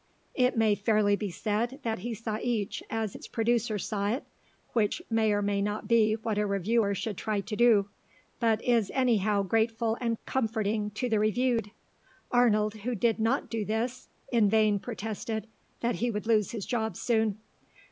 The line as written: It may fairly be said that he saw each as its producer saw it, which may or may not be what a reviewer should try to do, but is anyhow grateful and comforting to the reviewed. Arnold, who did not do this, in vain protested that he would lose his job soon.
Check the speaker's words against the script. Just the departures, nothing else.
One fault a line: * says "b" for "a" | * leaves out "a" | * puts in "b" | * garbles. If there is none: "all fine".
all fine